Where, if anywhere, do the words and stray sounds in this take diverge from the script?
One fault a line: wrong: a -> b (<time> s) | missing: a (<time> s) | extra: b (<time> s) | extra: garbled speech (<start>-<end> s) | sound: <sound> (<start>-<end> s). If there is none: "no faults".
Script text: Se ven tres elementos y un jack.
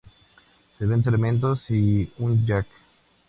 missing: tres (1.0 s)